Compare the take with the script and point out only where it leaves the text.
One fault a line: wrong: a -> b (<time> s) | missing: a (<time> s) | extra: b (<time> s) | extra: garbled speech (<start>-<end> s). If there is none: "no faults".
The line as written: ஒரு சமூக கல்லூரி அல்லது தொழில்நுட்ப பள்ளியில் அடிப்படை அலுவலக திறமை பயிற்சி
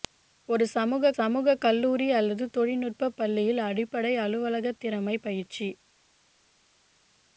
extra: சமூக (1.1 s)